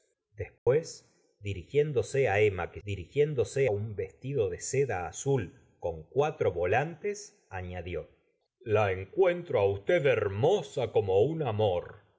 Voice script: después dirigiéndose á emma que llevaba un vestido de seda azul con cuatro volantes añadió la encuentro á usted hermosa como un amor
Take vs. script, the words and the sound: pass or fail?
fail